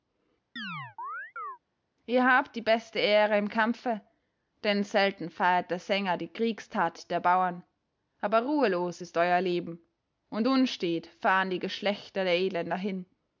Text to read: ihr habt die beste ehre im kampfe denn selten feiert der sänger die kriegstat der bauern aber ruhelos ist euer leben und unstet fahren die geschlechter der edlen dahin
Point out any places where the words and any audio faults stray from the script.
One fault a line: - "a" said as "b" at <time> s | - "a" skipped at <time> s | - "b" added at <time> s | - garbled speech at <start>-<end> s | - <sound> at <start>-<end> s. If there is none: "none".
- chirp at 0.6-1.6 s